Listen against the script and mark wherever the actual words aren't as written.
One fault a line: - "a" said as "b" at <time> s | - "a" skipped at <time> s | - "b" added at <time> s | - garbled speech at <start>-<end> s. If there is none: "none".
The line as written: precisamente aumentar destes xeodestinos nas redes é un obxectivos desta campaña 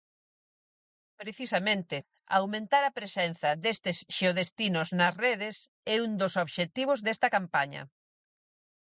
- "a presenza" added at 2.9 s
- "dos" added at 6.2 s